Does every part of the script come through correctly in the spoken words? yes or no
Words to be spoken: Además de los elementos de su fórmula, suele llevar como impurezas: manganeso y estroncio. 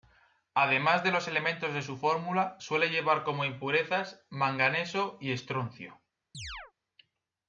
yes